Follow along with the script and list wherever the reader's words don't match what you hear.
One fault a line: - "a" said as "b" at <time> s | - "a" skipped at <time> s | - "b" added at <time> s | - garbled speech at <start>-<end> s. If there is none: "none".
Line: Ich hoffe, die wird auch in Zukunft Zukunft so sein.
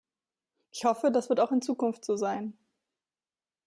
- "die" said as "das" at 1.1 s
- "Zukunft" skipped at 2.0 s